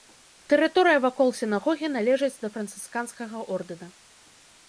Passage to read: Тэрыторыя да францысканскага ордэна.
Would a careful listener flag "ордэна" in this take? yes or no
no